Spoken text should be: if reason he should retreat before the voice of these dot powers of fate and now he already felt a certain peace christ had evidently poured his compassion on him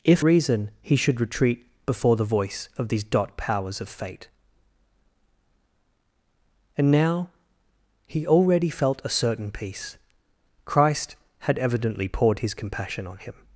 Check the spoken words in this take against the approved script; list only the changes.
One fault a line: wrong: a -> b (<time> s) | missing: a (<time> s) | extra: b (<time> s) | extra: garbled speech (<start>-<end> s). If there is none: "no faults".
no faults